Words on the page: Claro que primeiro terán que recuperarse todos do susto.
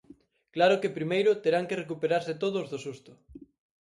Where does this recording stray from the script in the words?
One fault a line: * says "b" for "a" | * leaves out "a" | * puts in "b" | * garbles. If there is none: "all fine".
all fine